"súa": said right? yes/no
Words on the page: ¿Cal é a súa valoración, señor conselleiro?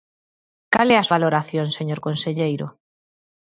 no